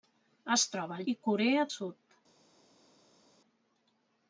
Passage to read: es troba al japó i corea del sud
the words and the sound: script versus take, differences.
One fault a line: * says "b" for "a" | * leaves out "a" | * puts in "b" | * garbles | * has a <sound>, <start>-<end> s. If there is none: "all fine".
* leaves out "japó"
* leaves out "del"